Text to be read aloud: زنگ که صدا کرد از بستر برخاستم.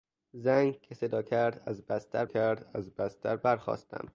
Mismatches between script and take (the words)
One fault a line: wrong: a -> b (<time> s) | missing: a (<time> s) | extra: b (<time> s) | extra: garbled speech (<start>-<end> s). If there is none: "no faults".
extra: کرد از بستر (2.2 s)